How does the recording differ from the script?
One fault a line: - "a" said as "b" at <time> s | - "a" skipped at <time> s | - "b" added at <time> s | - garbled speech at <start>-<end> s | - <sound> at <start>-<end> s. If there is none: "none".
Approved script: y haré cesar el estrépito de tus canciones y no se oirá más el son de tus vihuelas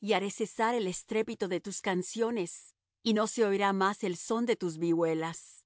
none